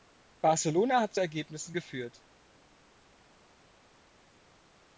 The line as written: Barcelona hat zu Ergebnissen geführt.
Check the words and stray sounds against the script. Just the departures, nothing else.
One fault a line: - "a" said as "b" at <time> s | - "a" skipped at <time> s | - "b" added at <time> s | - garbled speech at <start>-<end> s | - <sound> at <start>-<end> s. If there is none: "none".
none